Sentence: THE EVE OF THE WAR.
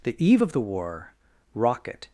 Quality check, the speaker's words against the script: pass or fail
fail